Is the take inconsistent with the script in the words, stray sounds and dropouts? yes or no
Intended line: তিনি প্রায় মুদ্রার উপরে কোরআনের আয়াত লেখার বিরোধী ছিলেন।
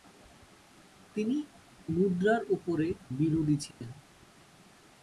yes